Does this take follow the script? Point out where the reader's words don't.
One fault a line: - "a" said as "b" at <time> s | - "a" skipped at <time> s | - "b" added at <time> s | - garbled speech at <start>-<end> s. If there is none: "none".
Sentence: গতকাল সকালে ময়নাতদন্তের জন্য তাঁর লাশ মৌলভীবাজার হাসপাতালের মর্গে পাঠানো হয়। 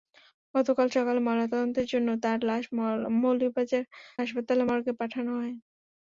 none